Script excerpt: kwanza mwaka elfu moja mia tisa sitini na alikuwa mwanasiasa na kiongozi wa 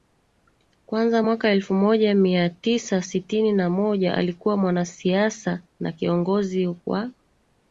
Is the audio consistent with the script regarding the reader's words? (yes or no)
no